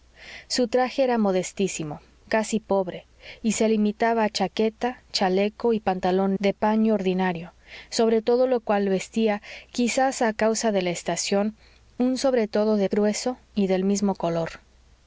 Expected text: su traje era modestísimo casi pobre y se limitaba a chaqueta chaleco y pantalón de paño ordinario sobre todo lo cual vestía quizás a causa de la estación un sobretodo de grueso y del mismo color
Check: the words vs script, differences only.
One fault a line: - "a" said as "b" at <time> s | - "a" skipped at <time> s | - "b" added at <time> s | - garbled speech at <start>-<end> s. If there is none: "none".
none